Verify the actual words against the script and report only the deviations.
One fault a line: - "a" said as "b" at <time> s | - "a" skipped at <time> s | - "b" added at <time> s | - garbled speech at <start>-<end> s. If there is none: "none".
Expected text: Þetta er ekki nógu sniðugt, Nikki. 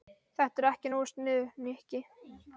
none